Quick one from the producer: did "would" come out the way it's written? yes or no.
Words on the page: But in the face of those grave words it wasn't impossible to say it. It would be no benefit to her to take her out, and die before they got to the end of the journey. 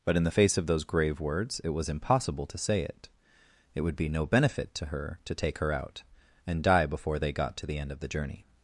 yes